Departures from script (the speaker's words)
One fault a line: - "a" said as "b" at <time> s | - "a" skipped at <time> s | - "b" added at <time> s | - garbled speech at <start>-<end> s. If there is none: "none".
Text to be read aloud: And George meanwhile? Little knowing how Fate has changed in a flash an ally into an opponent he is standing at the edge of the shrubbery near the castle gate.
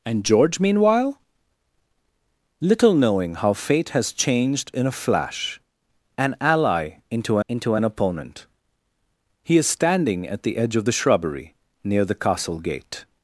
- "into" added at 7.5 s